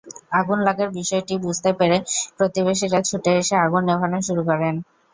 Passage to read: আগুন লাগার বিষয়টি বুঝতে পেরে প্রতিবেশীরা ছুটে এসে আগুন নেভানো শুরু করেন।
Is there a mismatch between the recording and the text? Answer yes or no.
no